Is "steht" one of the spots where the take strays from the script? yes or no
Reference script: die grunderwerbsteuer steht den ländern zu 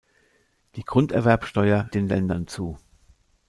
yes